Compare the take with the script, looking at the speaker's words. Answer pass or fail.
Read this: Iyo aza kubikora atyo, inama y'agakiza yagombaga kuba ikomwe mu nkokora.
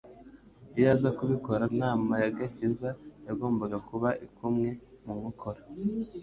fail